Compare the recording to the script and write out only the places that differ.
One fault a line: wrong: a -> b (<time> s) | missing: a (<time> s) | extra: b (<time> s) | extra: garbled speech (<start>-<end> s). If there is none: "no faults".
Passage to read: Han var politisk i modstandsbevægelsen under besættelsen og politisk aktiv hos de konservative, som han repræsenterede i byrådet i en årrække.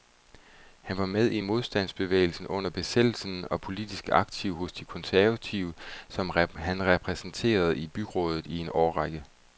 wrong: politisk -> med (1.1 s)